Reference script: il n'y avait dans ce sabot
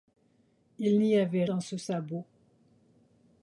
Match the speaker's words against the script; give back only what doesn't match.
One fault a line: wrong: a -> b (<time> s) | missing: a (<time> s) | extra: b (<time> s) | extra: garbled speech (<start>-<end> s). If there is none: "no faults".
no faults